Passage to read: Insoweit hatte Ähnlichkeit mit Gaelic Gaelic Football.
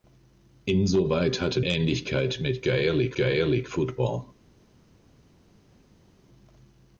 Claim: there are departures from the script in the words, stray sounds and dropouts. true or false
false